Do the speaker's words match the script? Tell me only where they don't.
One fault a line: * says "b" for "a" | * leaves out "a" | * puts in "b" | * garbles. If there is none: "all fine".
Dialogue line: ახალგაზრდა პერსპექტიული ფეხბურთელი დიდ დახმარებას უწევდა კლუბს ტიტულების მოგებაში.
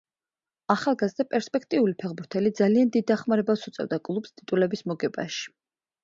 * puts in "ძალიან"